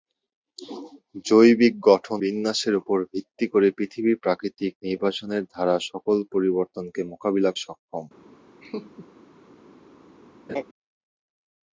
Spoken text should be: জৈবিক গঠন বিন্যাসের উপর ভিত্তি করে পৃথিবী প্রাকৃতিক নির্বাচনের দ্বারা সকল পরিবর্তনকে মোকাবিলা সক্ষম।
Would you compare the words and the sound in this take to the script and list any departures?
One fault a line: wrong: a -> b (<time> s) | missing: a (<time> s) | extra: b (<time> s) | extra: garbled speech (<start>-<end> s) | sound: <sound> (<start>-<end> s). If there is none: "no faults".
sound: laugh (8.6-9.1 s)
sound: laugh (10.5-10.6 s)